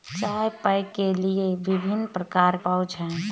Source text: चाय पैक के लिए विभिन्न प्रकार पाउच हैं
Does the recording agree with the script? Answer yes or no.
yes